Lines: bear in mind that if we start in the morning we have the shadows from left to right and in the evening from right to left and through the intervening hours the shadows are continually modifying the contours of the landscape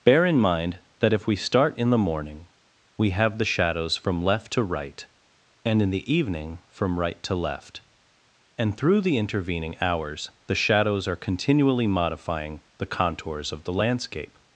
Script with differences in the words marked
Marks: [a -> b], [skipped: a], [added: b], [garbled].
bear in mind that if we start in the morning we have the shadows from left to right and in the evening from right to left and through the intervening hours the shadows are continually modifying the contours of the landscape